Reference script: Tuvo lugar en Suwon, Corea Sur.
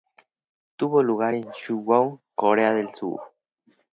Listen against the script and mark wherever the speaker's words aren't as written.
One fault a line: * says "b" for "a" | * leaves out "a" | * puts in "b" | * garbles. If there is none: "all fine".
* puts in "del"